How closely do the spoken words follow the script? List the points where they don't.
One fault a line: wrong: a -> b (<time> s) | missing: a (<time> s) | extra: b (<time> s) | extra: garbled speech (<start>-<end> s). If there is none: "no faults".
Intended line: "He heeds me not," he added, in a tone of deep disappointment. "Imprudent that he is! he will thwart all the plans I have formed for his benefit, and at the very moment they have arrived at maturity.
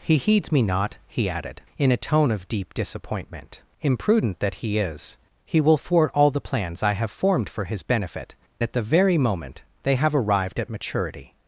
missing: and (8.4 s)